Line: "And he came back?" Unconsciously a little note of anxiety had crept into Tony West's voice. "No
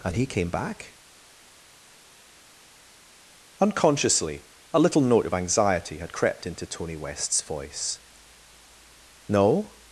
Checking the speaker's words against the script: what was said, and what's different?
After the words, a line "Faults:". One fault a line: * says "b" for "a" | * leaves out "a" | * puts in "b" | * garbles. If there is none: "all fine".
"And he came back?" Unconsciously a little note of anxiety had crept into Tony West's voice. "No
Faults:
all fine